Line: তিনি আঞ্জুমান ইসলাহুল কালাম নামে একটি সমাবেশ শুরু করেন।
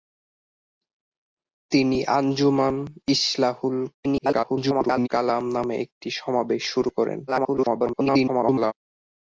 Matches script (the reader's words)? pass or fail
fail